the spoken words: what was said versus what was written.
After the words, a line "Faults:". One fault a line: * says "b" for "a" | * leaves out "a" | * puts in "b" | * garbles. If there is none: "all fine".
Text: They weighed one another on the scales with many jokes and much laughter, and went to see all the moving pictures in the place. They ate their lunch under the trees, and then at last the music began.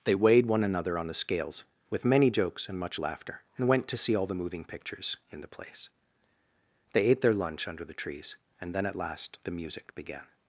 They weighed one another on the scales with many jokes and much laughter, and went to see all the moving pictures in the place. They ate their lunch under the trees, and then at last the music began.
Faults:
all fine